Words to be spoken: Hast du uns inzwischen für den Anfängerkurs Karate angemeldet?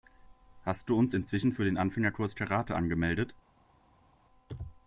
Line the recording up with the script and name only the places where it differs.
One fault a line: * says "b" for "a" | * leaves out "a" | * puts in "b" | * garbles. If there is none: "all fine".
all fine